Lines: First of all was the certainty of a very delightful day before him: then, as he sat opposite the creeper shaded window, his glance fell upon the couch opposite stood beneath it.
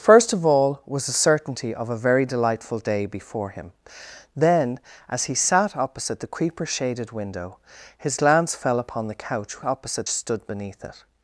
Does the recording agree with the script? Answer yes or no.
yes